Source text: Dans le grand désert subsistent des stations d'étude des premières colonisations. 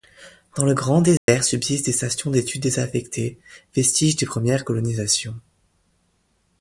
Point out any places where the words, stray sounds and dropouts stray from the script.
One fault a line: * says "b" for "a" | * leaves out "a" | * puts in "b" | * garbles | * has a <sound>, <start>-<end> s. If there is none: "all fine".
* has a dropout, 1.2-1.3 s
* puts in "désaffectées vestiges"